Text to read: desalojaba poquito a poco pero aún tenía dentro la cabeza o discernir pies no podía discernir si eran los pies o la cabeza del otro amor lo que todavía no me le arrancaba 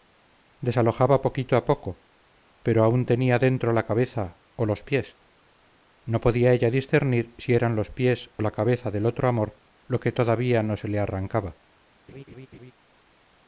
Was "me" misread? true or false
true